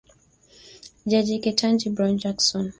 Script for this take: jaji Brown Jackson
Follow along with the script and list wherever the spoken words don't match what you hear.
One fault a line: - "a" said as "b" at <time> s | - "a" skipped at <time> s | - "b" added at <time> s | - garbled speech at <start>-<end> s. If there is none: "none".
- "Ketanji" added at 1.4 s